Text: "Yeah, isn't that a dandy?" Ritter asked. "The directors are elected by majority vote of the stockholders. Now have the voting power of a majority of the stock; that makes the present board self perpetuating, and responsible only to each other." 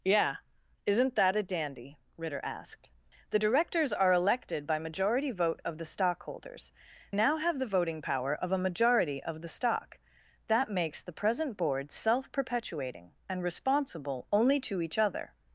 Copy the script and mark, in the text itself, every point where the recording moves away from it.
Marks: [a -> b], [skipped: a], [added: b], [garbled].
"Yeah, isn't that a dandy?" Ritter asked. "The directors are elected by majority vote of the stockholders. Now have the voting power of a majority of the stock; that makes the present board self perpetuating, and responsible only to each other."